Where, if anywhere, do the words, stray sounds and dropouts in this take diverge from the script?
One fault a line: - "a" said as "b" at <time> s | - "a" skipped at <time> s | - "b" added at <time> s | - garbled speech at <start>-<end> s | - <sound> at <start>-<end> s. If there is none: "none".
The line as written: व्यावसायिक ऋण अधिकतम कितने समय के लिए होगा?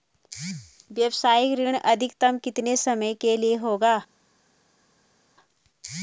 none